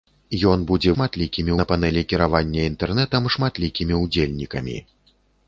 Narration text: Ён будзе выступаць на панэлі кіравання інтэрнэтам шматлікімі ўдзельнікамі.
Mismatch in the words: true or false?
true